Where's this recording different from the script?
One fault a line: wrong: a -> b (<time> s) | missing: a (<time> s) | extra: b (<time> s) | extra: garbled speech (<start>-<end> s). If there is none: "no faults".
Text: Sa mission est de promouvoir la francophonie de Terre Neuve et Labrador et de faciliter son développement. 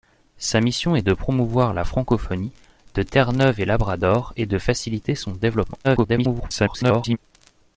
extra: garbled speech (5.8-7.2 s)